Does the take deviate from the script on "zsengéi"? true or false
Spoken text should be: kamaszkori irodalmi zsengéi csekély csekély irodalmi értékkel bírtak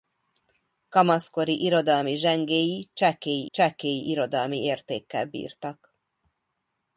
false